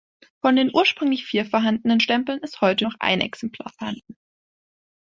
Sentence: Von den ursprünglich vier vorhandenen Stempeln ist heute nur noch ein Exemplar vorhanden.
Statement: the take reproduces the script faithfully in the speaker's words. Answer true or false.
false